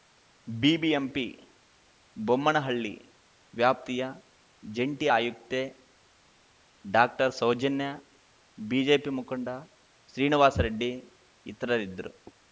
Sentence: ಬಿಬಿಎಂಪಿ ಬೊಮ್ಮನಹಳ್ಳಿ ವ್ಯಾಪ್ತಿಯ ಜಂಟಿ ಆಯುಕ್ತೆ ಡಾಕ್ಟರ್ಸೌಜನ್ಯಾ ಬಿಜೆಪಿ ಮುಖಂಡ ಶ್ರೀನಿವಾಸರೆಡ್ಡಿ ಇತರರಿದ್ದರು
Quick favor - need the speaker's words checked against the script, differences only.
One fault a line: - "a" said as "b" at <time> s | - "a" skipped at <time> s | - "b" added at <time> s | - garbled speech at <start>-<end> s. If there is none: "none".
none